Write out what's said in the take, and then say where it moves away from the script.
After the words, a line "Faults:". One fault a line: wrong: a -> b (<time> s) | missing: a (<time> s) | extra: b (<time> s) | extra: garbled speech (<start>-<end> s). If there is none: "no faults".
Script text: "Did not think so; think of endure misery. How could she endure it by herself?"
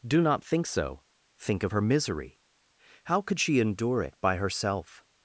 "Do not think so; think of her misery. How could she endure it by herself?"
Faults:
wrong: Did -> Do (0.1 s)
wrong: endure -> her (1.7 s)